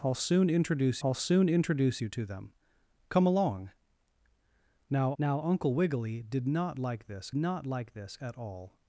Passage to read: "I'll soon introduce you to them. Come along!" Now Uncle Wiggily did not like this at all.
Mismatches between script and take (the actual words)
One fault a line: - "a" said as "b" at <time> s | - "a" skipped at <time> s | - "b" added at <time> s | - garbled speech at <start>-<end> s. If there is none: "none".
- "I'll soon introduce" added at 1.0 s
- "now" added at 5.2 s
- "not like this" added at 7.4 s